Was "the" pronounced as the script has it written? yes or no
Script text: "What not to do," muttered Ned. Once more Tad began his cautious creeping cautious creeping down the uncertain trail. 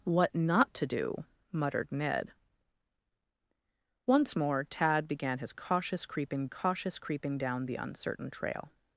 yes